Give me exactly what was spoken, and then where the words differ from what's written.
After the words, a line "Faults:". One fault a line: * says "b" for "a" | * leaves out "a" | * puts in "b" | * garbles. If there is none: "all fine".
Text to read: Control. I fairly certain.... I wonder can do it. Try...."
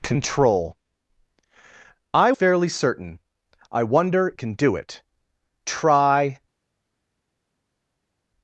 Control. I fairly certain.... I wonder can do it. Try...."
Faults:
all fine